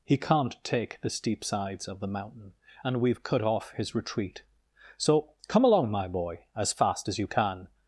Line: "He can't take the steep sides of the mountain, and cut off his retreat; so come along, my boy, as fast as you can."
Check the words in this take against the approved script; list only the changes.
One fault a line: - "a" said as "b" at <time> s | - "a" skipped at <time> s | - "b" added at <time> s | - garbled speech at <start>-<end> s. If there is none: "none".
- "we've" added at 3.0 s